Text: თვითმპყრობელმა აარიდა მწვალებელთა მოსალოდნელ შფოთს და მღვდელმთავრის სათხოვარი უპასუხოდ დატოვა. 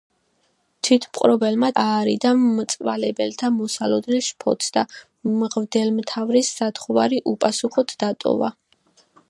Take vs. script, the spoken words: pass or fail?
pass